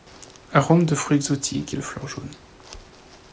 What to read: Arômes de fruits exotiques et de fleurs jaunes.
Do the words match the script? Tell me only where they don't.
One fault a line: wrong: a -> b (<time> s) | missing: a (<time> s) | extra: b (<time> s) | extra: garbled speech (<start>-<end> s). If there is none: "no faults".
no faults